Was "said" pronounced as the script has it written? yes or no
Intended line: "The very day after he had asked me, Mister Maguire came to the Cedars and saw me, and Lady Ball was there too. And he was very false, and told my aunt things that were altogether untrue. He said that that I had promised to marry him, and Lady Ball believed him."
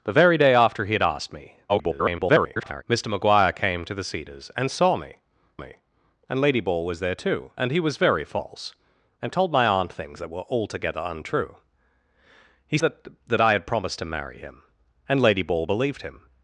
no